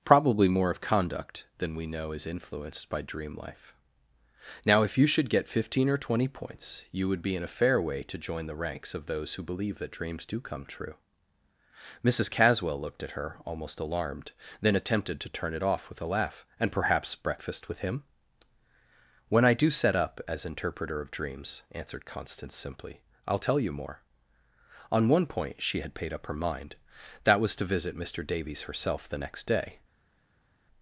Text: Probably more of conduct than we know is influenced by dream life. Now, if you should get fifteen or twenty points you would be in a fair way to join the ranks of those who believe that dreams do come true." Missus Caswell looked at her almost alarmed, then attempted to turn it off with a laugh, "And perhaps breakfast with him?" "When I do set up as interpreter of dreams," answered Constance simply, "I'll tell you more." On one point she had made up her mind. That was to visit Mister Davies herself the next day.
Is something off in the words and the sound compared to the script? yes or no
yes